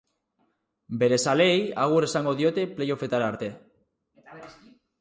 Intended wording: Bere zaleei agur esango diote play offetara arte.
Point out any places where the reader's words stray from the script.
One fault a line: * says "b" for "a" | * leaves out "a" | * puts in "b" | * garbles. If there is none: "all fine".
all fine